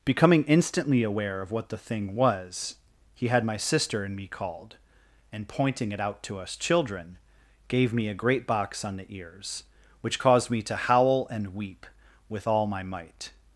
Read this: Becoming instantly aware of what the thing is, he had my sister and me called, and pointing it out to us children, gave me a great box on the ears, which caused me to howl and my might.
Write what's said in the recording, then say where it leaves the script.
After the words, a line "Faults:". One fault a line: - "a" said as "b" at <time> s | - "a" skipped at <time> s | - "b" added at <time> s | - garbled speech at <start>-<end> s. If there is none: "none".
Becoming instantly aware of what the thing was, he had my sister and me called, and pointing it out to us children, gave me a great box on the ears, which caused me to howl and weep with all my might.
Faults:
- "is" said as "was" at 2.1 s
- "weep with all" added at 11.5 s